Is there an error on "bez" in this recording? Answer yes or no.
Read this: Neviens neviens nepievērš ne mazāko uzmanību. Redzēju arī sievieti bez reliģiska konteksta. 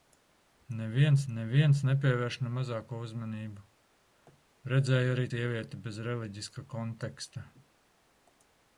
no